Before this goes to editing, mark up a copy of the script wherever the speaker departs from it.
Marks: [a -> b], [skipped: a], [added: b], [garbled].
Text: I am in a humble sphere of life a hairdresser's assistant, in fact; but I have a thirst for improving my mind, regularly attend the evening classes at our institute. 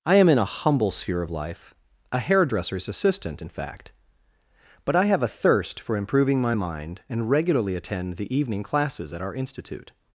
I am in a humble sphere of life a hairdresser's assistant, in fact; but I have a thirst for improving my mind, [added: and] regularly attend the evening classes at our institute.